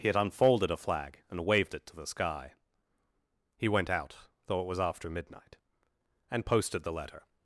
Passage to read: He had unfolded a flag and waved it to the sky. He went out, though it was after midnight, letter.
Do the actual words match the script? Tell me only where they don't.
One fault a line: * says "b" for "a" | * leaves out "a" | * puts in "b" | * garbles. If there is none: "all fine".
* puts in "and posted the"